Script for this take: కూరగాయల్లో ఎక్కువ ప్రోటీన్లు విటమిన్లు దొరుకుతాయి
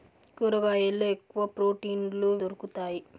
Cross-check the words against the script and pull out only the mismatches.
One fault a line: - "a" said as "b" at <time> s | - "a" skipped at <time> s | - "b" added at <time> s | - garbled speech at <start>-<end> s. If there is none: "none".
- "విటమిన్లు" skipped at 2.3 s